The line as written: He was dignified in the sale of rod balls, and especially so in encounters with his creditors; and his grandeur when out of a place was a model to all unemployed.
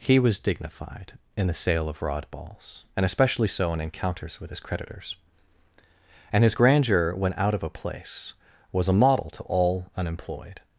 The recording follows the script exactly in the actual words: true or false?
true